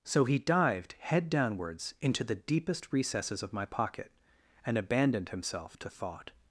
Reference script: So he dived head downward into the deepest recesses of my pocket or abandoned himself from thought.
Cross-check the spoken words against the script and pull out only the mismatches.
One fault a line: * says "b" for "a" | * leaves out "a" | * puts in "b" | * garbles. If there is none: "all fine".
* says "downwards" for "downward"
* says "and" for "or"
* says "to" for "from"